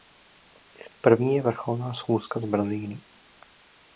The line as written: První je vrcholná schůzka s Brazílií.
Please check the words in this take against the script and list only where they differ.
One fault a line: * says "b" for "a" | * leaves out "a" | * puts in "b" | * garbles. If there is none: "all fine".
all fine